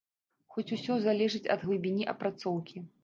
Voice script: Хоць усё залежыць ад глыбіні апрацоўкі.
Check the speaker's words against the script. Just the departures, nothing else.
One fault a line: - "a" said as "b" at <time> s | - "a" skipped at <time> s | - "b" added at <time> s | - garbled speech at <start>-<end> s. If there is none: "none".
none